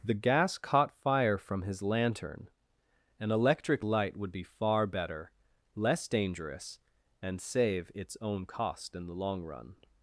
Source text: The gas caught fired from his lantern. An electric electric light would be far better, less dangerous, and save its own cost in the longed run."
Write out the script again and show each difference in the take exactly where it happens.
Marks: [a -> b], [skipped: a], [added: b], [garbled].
The gas caught [fired -> fire] from his lantern. An electric [skipped: electric] light would be far better, less dangerous, and save its own cost in the [longed -> long] run."